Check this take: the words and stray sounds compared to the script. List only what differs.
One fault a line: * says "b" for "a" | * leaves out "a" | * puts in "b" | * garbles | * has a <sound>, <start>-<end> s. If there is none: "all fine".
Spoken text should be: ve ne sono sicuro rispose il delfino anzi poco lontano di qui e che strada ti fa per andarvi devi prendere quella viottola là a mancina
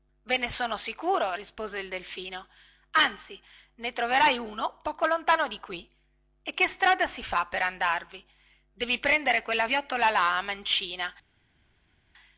* puts in "ne troverai uno"
* says "si" for "ti"